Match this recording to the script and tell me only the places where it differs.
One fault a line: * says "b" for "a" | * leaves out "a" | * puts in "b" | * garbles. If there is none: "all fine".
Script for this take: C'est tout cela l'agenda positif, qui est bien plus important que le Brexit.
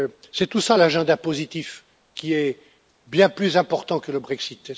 all fine